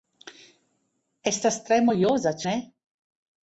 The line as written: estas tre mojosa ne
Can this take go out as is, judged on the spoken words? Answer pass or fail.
pass